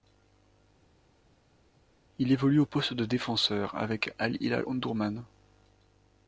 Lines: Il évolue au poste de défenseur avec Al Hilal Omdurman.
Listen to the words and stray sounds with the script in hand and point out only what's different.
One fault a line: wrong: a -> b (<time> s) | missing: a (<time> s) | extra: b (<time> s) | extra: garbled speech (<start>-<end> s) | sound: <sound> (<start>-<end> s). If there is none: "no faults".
no faults